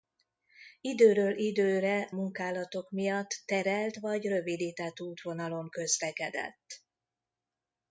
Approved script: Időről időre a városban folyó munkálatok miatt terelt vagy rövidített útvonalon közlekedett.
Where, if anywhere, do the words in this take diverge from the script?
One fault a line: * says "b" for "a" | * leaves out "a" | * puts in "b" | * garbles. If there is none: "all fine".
* leaves out "a városban folyó"